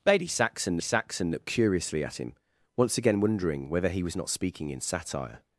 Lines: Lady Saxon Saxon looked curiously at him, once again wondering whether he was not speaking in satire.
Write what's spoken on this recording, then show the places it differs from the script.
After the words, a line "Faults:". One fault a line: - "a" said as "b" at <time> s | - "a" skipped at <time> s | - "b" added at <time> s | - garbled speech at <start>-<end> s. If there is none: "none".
Lady Saxon Saxon looked curiously at him, once again wondering whether he was not speaking in satire.
Faults:
none